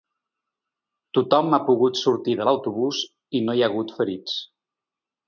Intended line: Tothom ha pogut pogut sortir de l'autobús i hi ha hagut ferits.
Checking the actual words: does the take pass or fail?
fail